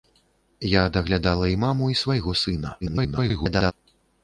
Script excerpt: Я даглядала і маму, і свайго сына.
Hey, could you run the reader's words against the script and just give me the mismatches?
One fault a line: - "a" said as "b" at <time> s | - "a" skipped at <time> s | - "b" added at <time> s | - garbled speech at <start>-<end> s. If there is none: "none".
- garbled speech at 2.8-3.7 s